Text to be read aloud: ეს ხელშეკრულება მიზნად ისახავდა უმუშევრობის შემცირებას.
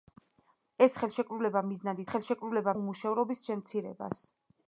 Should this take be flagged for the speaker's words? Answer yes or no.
yes